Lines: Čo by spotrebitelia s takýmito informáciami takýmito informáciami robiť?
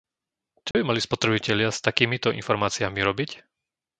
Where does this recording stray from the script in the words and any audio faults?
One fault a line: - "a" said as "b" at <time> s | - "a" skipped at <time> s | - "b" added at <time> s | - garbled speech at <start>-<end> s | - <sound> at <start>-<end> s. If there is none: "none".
- dropout at 0.7-0.7 s
- "mali" added at 0.8 s
- "takýmito informáciami" skipped at 3.0 s